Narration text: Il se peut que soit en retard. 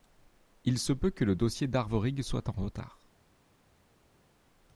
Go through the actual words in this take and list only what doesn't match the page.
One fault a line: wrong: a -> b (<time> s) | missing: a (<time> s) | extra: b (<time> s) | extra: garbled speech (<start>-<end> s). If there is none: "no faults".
extra: le dossier d'Arvorig (1.2 s)